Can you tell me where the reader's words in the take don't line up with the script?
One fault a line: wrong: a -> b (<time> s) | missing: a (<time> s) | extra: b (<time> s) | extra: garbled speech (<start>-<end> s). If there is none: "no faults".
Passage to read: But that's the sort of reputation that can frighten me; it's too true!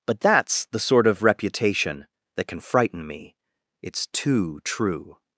no faults